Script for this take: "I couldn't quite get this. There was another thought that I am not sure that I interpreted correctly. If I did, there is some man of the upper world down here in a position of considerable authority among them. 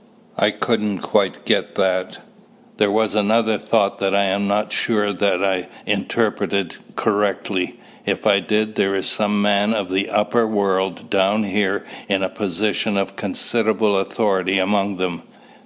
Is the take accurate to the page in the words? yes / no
no